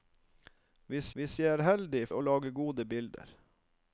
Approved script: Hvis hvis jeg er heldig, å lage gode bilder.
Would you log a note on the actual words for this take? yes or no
no